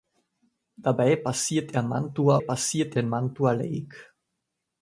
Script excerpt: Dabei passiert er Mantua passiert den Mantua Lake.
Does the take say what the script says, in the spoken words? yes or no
yes